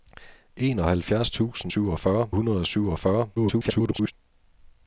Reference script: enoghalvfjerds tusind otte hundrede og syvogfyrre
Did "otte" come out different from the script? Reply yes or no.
yes